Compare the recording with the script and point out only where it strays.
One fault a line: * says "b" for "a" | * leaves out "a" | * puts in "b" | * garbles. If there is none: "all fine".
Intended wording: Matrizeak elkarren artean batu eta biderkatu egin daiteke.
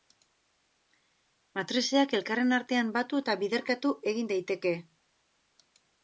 all fine